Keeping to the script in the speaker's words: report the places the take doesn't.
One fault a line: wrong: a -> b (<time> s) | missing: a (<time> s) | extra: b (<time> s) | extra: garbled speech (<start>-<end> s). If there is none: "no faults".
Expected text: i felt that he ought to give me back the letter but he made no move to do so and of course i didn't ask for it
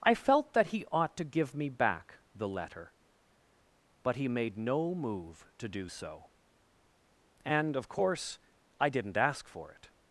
no faults